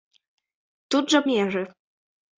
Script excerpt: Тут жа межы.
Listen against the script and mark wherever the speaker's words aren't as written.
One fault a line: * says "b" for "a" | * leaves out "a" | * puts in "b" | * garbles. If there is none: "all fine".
all fine